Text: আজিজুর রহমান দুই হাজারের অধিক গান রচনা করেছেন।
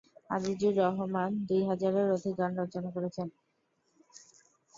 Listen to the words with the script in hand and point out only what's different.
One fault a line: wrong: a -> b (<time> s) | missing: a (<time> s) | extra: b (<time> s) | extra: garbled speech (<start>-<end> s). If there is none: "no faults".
no faults